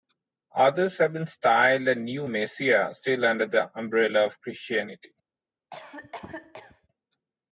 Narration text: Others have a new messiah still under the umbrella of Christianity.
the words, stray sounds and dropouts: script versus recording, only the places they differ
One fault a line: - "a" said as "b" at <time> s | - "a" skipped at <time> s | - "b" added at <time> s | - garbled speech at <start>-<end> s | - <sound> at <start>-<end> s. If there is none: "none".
- "been styled" added at 1.1 s
- cough at 5.7-6.9 s